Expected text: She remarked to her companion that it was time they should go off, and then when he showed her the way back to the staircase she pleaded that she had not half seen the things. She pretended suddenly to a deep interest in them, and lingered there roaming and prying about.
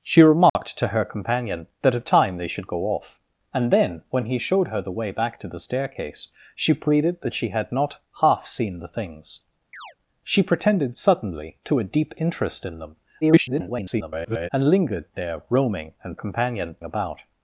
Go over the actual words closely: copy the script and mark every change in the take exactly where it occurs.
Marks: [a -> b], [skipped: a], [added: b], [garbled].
She remarked to her companion that it [skipped: was] time they should go off, and then when he showed her the way back to the staircase she pleaded that she had not half seen the things. She pretended suddenly to a deep interest in them, [garbled] and lingered there roaming and [prying -> companion] about.